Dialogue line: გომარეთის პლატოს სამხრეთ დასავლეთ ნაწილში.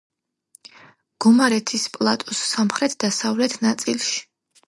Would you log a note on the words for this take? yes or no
no